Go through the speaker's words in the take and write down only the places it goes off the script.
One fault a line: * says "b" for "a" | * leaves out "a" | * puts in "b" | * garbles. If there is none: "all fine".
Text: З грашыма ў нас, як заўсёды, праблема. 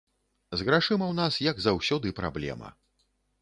all fine